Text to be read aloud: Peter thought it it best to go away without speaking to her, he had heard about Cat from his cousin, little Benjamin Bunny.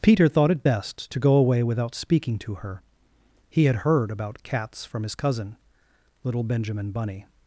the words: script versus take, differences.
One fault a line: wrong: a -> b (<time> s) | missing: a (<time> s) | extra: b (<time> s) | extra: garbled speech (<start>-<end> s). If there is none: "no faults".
missing: it (0.7 s)
wrong: Cat -> Cats (4.4 s)